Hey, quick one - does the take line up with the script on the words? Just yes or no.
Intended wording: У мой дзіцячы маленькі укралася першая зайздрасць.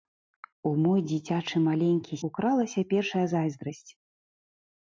yes